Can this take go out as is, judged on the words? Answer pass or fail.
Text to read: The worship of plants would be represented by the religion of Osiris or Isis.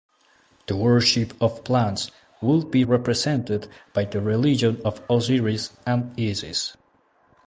fail